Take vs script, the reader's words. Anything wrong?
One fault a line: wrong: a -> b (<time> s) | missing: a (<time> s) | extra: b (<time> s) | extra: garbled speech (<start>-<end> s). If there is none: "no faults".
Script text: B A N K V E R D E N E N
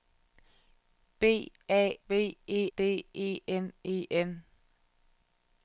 missing: N K (2.0 s)
missing: R (2.7 s)